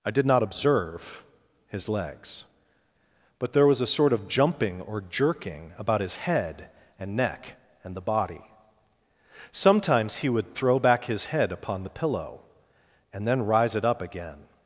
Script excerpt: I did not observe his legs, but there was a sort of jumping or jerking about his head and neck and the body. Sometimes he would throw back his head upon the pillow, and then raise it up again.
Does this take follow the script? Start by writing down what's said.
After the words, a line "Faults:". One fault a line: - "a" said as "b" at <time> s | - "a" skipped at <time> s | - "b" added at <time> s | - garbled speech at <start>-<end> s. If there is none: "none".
I did not observe his legs, but there was a sort of jumping or jerking about his head and neck and the body. Sometimes he would throw back his head upon the pillow, and then rise it up again.
Faults:
- "raise" said as "rise" at 13.4 s